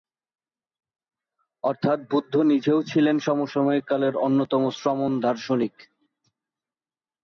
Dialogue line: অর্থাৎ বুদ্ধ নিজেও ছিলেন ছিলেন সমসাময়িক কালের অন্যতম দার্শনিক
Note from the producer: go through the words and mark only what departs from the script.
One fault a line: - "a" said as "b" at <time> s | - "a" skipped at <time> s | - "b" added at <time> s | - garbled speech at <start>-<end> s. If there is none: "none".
- "ছিলেন" skipped at 3.1 s
- "শ্রমণ" added at 4.7 s